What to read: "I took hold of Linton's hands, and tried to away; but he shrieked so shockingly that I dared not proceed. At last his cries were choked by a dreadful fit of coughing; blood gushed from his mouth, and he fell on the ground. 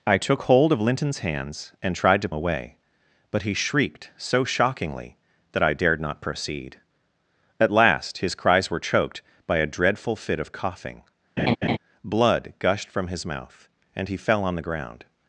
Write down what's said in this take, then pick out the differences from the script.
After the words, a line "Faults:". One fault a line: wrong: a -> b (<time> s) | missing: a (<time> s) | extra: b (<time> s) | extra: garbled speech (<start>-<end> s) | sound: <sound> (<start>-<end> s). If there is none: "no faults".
"I took hold of Linton's hands, and tried to away; but he shrieked so shockingly that I dared not proceed. At last his cries were choked by a dreadful fit of coughing; blood gushed from his mouth, and he fell on the ground.
Faults:
sound: laugh (11.4-11.8 s)